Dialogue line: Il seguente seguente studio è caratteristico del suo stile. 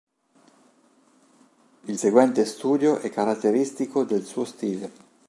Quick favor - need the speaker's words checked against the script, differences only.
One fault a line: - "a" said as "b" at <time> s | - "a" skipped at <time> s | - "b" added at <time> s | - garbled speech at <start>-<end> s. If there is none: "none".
- "seguente" skipped at 2.4 s